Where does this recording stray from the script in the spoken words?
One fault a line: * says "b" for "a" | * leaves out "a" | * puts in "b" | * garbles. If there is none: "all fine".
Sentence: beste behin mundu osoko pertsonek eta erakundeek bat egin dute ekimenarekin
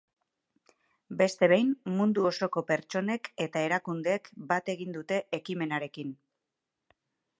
all fine